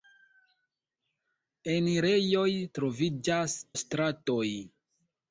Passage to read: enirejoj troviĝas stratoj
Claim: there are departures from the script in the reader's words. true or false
false